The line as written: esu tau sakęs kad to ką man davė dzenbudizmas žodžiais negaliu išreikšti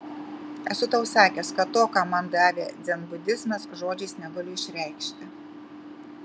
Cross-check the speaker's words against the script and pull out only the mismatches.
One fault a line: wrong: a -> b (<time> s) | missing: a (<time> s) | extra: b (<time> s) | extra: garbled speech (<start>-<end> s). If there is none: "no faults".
no faults